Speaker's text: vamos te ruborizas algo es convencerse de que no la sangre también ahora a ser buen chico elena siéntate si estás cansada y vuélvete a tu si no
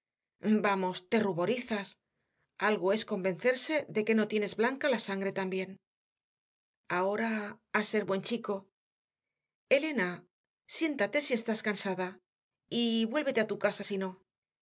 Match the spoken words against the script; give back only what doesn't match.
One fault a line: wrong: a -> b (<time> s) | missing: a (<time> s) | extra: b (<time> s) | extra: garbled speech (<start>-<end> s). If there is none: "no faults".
extra: tienes blanca (4.3 s)
extra: casa (13.6 s)